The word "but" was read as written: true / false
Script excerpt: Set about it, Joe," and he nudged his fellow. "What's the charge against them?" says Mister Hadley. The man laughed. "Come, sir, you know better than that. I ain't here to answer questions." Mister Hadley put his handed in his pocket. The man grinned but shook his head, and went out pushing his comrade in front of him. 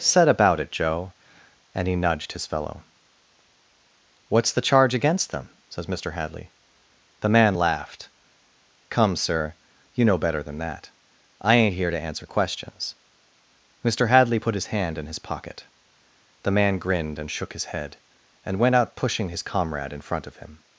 false